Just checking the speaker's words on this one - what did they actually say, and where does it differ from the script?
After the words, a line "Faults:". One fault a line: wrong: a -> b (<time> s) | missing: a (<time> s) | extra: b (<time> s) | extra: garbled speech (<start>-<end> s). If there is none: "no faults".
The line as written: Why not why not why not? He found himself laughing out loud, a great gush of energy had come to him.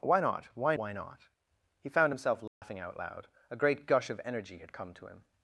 Why not why why not? He found himself laughing out loud, a great gush of energy had come to him.
Faults:
missing: not (0.8 s)